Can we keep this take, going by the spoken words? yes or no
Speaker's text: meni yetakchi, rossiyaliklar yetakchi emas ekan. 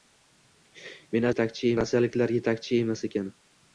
yes